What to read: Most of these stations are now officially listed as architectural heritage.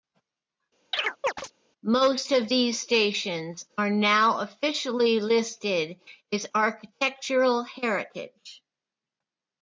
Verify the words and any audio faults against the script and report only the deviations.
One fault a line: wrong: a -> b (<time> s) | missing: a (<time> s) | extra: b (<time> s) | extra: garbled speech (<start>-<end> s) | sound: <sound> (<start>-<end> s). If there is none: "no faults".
sound: chirp (0.9-1.5 s)